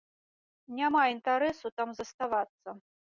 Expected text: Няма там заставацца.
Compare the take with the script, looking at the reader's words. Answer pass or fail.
fail